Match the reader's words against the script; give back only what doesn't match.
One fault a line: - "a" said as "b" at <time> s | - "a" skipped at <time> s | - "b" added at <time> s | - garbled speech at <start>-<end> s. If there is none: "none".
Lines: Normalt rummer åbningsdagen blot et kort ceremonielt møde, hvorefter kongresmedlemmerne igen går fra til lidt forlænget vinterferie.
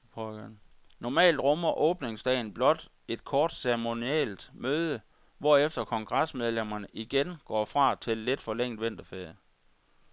none